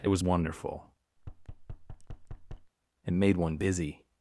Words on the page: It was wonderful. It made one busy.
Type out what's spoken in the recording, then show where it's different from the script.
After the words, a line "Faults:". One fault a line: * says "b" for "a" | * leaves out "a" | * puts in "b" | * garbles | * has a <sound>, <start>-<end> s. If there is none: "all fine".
It was wonderful. It made one busy.
Faults:
* has a thud, 1.2-2.7 s